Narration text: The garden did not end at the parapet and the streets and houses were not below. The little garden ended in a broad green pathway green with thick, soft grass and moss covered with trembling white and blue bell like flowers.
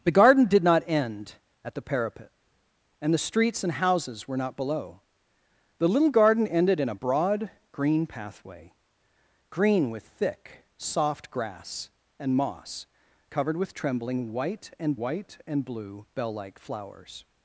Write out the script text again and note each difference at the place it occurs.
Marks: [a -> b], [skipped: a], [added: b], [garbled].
The garden did not end at the parapet and the streets and houses were not below. The little garden ended in a broad green pathway green with thick, soft grass and moss covered with trembling white and [added: white and] blue bell like flowers.